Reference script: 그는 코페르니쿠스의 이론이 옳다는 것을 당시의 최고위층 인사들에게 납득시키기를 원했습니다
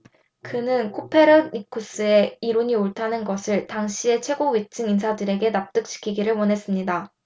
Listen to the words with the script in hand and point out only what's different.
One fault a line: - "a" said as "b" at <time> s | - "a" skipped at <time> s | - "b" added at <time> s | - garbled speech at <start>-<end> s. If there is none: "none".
none